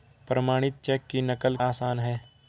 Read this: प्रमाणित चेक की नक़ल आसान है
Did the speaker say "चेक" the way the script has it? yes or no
yes